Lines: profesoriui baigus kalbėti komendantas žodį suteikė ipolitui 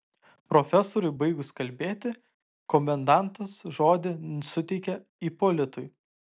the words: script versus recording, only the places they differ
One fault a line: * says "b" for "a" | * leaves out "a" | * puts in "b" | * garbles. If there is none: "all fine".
all fine